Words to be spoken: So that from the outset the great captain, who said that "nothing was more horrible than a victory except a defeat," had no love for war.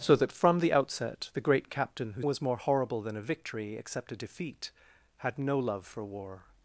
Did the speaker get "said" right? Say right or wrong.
wrong